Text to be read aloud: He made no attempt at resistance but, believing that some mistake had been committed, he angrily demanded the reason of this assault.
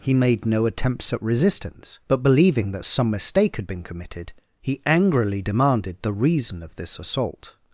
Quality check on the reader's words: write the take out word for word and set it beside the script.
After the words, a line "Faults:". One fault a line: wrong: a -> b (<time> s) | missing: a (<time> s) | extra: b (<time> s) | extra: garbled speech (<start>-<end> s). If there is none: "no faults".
He made no attempts at resistance but, believing that some mistake had been committed, he angrily demanded the reason of this assault.
Faults:
wrong: attempt -> attempts (0.7 s)